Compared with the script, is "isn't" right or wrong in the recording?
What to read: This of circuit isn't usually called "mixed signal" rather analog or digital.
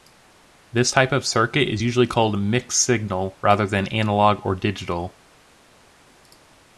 wrong